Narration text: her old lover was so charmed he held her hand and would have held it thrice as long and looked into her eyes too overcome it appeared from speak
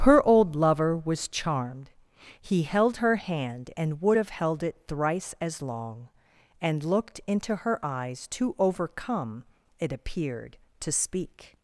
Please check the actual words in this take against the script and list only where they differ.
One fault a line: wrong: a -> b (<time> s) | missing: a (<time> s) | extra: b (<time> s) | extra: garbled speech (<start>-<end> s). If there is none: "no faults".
missing: so (1.3 s)
wrong: from -> to (10.8 s)